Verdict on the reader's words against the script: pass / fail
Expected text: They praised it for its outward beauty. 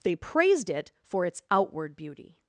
pass